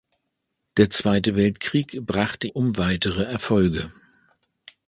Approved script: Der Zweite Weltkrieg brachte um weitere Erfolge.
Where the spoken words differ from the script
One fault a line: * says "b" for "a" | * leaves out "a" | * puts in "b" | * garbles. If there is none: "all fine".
all fine